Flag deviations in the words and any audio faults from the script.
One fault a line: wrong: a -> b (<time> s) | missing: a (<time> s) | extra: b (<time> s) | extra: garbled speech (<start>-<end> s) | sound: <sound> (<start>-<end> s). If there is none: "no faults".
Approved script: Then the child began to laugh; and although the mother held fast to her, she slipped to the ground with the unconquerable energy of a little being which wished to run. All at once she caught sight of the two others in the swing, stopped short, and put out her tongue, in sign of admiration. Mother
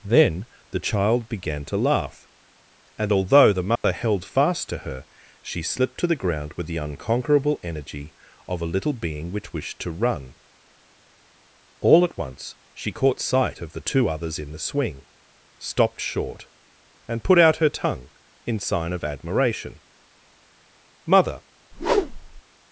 sound: dropout (3.8-3.8 s)
sound: whoosh (21.7-22.4 s)